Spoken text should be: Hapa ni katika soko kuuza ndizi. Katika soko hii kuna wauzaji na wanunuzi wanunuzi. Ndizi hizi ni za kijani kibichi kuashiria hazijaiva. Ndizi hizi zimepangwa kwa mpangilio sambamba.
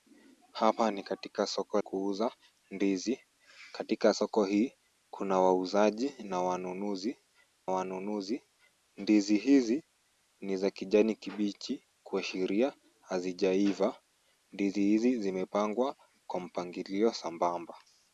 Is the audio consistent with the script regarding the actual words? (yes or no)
yes